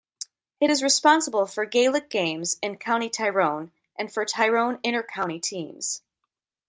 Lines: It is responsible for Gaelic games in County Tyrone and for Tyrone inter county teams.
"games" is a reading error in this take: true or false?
false